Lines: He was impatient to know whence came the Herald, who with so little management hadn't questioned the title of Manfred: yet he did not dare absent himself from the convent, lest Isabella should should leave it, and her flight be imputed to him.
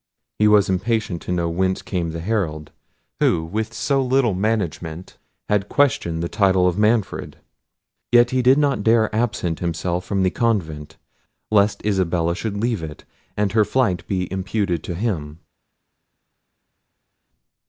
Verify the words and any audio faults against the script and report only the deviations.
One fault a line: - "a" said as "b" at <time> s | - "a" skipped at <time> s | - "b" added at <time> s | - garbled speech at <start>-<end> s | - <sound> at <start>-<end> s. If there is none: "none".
- "hadn't" said as "had" at 5.5 s
- "should" skipped at 12.6 s